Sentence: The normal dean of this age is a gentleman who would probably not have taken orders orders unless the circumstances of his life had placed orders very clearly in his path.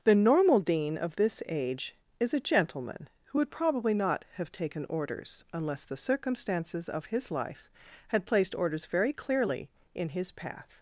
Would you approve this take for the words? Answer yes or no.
no